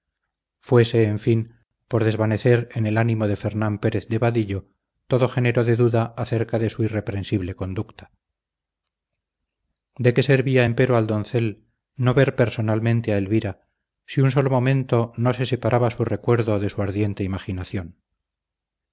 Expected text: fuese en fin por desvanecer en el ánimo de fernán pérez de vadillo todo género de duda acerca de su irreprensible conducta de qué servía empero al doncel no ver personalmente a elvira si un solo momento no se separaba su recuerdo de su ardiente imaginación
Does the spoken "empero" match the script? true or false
true